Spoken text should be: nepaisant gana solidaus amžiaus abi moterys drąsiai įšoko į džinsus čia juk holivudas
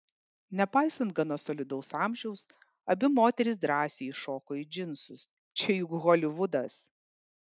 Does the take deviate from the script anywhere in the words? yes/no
no